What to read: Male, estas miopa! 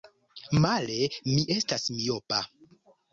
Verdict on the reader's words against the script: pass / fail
fail